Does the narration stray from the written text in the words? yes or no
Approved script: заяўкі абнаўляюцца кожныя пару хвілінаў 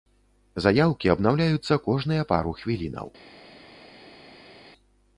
no